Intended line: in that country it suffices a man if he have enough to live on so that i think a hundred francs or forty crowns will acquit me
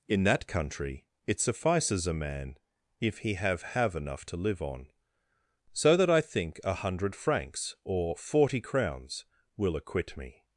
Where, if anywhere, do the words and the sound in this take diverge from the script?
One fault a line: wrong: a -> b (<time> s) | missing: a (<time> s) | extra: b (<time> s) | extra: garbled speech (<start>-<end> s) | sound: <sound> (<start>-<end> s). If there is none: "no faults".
extra: have (3.6 s)